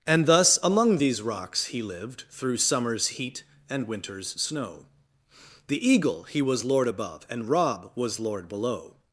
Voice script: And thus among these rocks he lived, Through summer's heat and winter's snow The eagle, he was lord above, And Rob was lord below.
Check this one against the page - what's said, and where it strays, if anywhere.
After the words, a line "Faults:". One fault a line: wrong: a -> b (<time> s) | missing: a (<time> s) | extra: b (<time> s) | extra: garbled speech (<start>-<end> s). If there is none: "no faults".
And thus among these rocks he lived, Through summer's heat and winter's snow The eagle, he was lord above, And Rob was lord below.
Faults:
no faults